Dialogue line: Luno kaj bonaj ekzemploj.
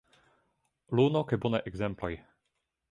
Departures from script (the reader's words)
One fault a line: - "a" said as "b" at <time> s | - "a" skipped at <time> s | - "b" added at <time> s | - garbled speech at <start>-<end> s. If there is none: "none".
none